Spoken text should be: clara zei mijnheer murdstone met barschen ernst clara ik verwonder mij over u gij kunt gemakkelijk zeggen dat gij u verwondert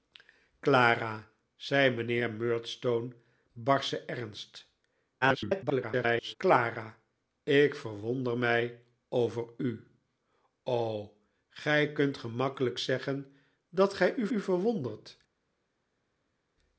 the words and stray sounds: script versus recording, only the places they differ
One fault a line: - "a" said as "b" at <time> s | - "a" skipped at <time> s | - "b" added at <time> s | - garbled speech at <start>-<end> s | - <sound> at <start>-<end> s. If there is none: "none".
- "met" skipped at 3.1 s
- garbled speech at 5.2-6.4 s
- "u" added at 14.3 s